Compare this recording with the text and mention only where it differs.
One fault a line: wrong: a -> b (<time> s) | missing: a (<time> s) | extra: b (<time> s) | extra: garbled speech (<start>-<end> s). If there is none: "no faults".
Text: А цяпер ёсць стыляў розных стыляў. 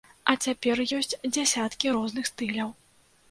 wrong: стыляў -> дзясяткі (1.3 s)